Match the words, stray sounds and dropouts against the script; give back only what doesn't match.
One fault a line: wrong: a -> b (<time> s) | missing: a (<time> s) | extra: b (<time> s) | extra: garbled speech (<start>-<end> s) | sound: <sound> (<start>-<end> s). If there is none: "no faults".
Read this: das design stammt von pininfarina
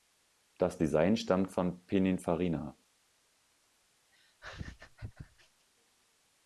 sound: laugh (4.1-5.7 s)